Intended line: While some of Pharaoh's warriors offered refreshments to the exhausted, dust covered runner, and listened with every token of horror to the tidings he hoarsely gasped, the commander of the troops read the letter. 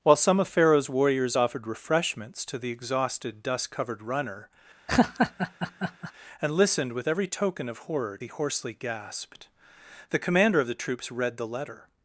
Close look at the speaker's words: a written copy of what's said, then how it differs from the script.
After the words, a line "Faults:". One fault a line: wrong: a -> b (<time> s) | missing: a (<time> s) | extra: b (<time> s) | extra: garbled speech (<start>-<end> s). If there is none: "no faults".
While some of Pharaoh's warriors offered refreshments to the exhausted, dust covered runner, and listened with every token of horror he hoarsely gasped, the commander of the troops read the letter.
Faults:
missing: to the tidings (8.2 s)